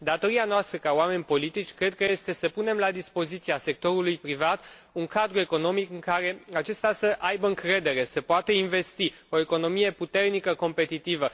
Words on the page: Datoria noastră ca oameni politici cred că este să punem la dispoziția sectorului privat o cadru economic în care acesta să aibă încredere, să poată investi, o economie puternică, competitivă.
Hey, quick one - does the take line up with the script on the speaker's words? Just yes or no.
no